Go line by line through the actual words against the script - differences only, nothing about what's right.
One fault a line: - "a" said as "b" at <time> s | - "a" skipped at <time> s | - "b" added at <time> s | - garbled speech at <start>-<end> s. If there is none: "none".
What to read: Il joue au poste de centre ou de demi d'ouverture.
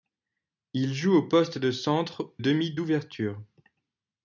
- "ou de" skipped at 2.4 s